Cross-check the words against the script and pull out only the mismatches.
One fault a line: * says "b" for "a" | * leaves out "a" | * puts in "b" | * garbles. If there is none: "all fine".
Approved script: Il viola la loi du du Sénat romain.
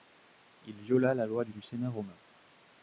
all fine